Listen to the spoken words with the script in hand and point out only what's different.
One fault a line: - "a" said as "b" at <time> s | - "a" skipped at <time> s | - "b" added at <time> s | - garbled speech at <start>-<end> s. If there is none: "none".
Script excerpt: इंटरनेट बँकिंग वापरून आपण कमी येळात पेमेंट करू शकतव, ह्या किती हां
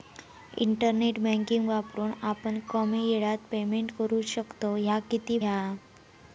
none